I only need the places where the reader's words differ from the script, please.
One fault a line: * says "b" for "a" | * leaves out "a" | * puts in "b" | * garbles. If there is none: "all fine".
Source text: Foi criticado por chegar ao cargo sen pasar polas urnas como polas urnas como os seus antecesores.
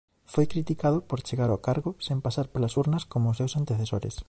* leaves out "polas urnas como"